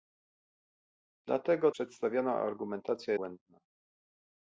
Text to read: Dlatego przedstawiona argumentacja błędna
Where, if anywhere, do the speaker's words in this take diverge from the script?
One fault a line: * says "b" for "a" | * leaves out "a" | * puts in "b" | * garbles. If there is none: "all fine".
all fine